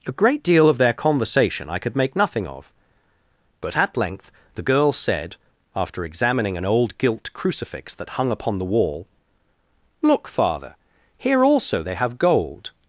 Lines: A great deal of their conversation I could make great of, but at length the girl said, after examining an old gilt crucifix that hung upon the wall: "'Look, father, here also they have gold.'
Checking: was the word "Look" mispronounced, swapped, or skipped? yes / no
no